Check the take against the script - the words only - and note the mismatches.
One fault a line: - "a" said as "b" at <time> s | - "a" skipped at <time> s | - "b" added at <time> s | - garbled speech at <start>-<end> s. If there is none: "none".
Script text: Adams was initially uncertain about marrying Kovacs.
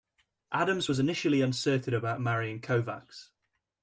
none